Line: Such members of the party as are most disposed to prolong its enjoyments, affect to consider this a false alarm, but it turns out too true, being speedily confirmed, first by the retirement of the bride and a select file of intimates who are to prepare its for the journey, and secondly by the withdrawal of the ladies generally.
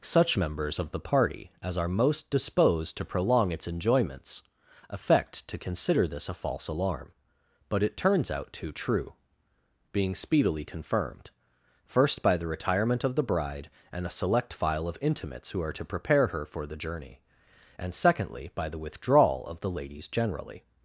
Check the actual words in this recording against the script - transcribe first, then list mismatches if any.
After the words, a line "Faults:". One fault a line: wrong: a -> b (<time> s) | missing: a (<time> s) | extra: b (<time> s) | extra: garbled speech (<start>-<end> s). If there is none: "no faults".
Such members of the party as are most disposed to prolong its enjoyments, affect to consider this a false alarm, but it turns out too true, being speedily confirmed, first by the retirement of the bride and a select file of intimates who are to prepare her for the journey, and secondly by the withdrawal of the ladies generally.
Faults:
wrong: its -> her (16.3 s)